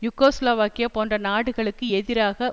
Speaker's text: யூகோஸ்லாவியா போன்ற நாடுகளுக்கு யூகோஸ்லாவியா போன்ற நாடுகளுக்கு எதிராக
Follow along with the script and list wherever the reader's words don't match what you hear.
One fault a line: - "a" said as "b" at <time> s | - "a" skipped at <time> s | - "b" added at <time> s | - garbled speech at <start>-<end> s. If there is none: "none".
- "யூகோஸ்லாவியா போன்ற நாடுகளுக்கு" skipped at 1.8 s